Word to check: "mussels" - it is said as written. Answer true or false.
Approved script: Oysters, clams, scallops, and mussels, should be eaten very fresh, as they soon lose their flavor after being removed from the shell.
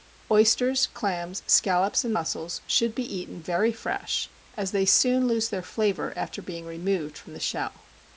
true